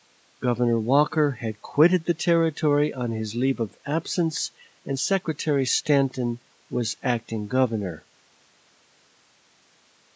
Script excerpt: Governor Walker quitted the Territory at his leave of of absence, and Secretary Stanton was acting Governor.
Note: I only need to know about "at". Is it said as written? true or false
false